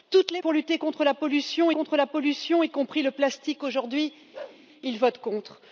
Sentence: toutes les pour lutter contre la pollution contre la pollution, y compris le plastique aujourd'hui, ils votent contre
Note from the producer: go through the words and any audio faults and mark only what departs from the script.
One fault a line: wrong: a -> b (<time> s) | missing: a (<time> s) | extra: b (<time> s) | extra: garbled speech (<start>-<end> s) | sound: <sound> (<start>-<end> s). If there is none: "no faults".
sound: bark (4.3-4.6 s)